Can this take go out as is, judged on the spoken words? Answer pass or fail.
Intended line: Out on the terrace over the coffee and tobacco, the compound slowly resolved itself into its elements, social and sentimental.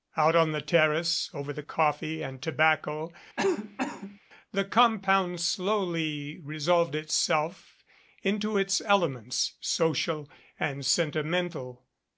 pass